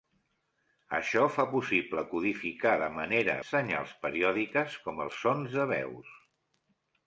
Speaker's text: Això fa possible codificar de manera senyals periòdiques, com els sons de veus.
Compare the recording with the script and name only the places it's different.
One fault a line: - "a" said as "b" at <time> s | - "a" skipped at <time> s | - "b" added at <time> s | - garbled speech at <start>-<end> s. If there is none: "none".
none